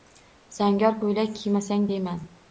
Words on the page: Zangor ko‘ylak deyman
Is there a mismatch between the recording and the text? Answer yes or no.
yes